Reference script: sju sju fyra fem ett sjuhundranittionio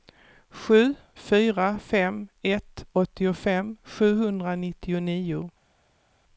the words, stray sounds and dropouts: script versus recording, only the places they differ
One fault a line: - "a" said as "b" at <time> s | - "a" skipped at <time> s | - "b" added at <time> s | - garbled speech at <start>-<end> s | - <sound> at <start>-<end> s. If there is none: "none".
- "sju" skipped at 0.9 s
- "åttiofem" added at 2.9 s